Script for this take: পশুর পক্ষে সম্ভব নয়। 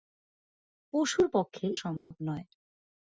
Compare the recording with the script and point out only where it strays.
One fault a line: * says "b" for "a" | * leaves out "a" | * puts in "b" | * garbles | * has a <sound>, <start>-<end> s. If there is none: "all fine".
* has a dropout, 2.0-2.1 s